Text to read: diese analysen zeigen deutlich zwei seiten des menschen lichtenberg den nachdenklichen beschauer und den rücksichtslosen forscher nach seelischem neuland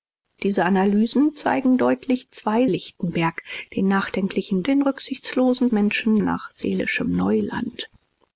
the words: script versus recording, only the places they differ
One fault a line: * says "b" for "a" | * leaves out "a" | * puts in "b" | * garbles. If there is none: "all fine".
* leaves out "seiten des menschen"
* leaves out "beschauer und"
* says "menschen" for "forscher"